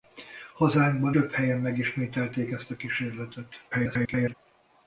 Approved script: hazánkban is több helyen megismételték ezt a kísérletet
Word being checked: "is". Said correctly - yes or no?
no